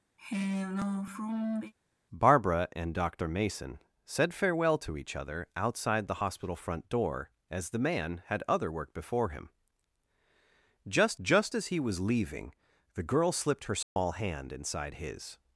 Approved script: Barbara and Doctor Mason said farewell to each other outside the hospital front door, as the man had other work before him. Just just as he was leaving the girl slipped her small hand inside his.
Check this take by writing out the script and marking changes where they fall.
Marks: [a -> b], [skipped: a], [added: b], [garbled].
Barbara and Doctor Mason said farewell to each other outside the hospital front door, as the man had other work before him. Just just as he was leaving the girl slipped her small hand inside his.